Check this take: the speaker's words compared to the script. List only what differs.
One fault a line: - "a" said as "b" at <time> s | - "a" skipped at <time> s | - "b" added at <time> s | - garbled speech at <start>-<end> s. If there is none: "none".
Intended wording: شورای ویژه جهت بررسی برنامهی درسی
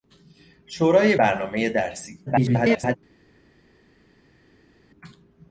- "ویژه جهت بررسی" skipped at 1.1 s
- garbled speech at 2.3-3.0 s